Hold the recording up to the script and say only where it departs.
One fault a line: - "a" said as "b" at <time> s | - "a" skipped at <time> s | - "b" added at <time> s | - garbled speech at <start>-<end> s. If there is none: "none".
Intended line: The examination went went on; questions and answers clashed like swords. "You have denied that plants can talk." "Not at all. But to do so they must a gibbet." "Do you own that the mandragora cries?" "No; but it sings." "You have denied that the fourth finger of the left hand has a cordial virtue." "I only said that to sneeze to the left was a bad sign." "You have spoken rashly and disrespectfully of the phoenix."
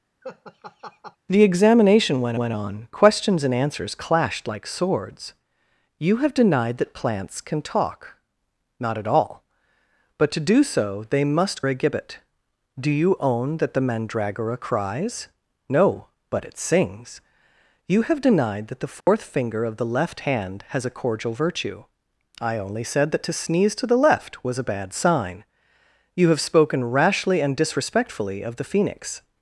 none